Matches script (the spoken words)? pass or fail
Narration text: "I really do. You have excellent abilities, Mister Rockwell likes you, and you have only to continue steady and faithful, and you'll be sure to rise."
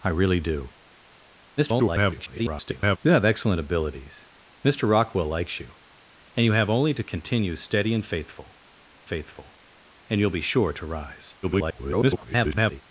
fail